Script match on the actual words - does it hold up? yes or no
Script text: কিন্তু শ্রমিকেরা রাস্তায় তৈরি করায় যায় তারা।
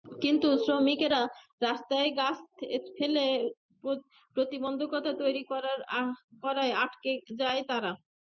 no